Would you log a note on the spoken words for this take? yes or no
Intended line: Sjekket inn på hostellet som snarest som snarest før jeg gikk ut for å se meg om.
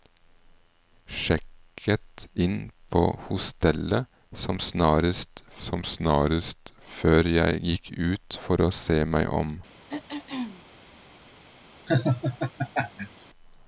no